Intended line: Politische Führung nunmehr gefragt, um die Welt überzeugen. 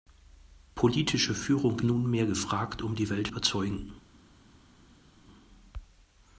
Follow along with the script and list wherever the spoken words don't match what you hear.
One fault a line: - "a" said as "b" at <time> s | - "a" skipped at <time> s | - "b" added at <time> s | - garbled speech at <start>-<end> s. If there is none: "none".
none